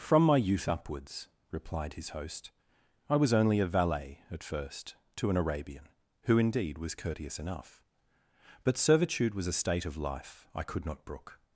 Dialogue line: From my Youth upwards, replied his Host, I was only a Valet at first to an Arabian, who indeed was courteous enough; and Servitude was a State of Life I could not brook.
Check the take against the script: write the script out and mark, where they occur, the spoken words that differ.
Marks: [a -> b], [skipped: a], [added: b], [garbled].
From my Youth upwards, replied his Host, I was only a Valet at first to an Arabian, who indeed was courteous enough; [and -> but] Servitude was a State of Life I could not brook.